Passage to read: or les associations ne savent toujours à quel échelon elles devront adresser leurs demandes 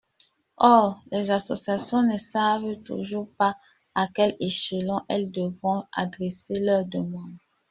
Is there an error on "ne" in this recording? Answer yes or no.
no